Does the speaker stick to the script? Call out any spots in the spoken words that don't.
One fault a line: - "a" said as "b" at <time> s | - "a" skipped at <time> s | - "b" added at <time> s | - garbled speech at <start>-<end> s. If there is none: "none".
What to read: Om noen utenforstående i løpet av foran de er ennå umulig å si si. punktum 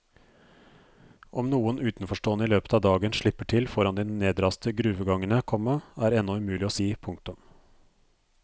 - "dagen slipper til" added at 2.9 s
- "nedraste gruvegangene komma" added at 4.1 s
- "si" skipped at 6.9 s